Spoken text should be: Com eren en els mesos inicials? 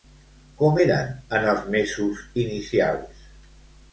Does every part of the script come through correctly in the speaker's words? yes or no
yes